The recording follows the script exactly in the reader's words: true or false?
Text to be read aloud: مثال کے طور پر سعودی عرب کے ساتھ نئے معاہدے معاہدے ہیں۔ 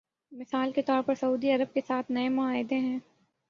false